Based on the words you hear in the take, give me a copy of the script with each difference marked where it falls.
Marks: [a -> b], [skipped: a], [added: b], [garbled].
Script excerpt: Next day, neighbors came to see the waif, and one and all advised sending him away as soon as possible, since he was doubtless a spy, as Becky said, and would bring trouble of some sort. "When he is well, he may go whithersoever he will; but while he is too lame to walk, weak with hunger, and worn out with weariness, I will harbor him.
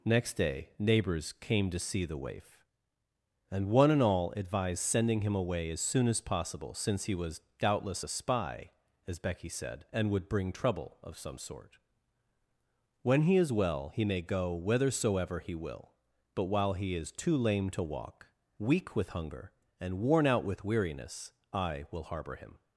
Next day, neighbors came to see the waif, and one and all advised sending him away as soon as possible, since he was doubtless a spy, as Becky said, and would bring trouble of some sort. "When he is well, he may go whithersoever he will; but while he is too lame to walk, weak with hunger, and worn out with weariness, I will harbor him.